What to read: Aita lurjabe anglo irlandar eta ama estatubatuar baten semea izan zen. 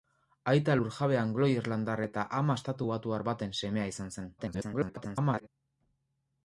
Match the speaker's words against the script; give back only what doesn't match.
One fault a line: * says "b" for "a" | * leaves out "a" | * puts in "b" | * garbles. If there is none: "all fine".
* garbles